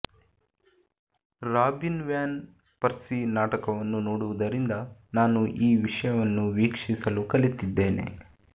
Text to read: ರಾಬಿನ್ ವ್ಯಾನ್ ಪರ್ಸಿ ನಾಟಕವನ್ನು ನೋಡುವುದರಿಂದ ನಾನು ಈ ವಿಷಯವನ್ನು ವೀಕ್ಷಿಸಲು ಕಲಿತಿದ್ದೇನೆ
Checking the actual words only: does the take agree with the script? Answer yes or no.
yes